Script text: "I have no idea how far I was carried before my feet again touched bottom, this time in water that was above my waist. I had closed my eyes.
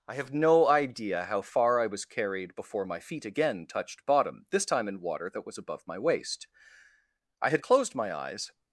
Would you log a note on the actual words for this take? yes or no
no